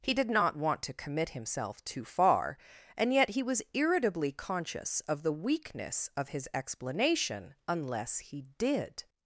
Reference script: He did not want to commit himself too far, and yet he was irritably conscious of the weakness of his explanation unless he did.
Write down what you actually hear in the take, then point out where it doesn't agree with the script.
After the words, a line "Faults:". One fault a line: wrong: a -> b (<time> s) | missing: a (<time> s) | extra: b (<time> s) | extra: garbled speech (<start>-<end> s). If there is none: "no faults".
He did not want to commit himself too far, and yet he was irritably conscious of the weakness of his explanation unless he did.
Faults:
no faults